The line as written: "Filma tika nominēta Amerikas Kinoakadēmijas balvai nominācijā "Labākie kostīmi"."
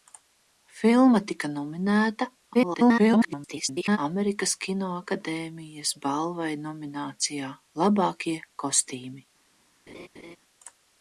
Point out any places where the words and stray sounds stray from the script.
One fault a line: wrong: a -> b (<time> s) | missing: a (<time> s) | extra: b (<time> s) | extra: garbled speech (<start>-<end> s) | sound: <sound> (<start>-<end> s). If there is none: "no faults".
extra: garbled speech (2.5-4.0 s)
sound: laugh (9.9-10.4 s)